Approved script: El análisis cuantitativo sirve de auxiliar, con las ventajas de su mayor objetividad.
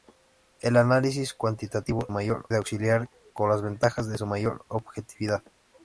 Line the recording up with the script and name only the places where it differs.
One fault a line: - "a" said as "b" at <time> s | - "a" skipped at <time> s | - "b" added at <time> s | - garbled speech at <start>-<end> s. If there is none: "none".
- "sirve" said as "mayor" at 2.1 s